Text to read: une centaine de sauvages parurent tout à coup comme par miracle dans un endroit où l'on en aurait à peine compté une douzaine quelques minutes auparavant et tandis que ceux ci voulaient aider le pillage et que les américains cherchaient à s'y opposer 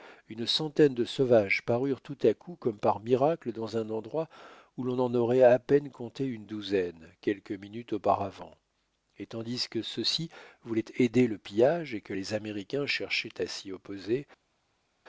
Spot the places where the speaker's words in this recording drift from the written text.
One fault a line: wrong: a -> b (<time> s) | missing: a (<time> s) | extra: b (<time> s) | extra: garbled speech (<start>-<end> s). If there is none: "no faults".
no faults